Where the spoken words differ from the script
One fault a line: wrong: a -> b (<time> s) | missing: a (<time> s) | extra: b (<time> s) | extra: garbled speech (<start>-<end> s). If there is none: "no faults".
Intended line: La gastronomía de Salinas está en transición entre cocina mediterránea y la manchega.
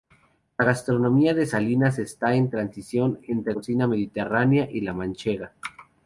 no faults